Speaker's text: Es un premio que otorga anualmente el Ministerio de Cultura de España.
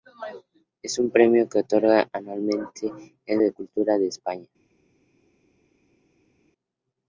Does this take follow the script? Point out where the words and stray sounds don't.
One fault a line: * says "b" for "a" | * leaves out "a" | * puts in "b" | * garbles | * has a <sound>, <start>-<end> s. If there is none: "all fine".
* leaves out "Ministerio"